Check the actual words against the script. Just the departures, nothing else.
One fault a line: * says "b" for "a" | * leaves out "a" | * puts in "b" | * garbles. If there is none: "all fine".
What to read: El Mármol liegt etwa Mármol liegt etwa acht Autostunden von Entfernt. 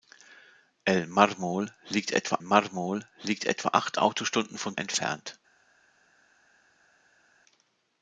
all fine